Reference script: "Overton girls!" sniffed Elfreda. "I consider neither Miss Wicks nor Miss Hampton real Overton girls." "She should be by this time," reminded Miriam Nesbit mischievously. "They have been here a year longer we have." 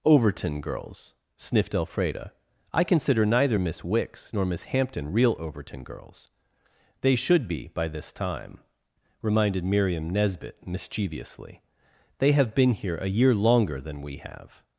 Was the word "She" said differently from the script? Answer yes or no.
yes